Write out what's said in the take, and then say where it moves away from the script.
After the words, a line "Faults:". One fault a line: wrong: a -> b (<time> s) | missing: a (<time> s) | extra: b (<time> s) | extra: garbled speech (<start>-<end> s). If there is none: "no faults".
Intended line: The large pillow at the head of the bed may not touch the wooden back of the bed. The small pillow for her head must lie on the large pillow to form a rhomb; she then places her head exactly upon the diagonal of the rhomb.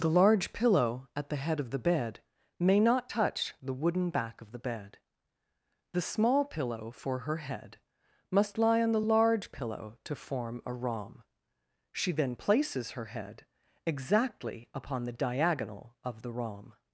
The large pillow at the head of the bed may not touch the wooden back of the bed. The small pillow for her head must lie on the large pillow to form a rhomb; she then places her head exactly upon the diagonal of the rhomb.
Faults:
no faults